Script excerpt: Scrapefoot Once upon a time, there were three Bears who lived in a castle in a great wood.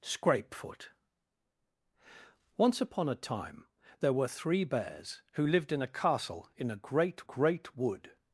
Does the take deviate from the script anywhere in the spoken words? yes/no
yes